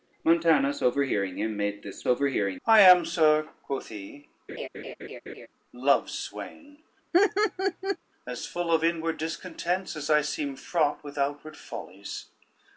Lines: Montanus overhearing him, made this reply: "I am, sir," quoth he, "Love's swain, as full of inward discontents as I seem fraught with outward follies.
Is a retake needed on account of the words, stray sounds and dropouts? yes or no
yes